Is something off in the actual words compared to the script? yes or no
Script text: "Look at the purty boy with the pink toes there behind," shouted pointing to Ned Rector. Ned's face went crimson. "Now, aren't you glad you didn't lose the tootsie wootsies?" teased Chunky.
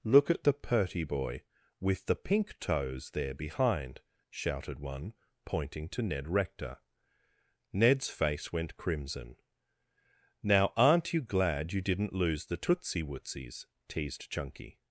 yes